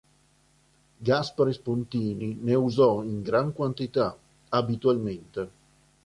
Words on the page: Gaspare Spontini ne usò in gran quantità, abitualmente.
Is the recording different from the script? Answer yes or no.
no